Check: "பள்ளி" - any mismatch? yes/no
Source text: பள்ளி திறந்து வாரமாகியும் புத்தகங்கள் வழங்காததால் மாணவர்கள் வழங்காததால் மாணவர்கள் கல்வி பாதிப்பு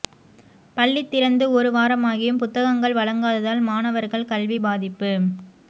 no